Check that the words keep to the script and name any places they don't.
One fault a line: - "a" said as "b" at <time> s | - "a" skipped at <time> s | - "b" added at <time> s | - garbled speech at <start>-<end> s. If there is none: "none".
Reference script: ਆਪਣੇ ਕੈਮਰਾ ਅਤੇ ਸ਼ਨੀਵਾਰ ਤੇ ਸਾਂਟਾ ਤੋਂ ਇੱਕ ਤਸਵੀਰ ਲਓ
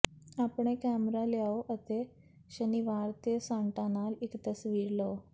- "ਲਿਆਓ" added at 1.2 s
- "ਤੋਂ" said as "ਨਾਲ" at 3.9 s